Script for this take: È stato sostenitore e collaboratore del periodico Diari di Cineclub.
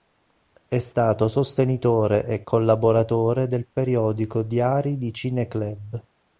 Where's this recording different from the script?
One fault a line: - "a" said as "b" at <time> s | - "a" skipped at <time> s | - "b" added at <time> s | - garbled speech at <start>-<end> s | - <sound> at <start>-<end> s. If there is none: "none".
none